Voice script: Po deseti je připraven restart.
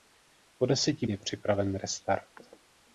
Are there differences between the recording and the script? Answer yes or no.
no